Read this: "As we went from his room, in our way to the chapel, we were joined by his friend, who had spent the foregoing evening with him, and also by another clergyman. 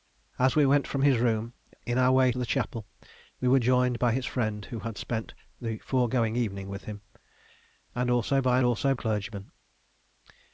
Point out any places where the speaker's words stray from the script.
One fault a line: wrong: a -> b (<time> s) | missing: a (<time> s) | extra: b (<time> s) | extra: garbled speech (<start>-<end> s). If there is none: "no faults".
missing: to (2.3 s)
wrong: another -> also (8.6 s)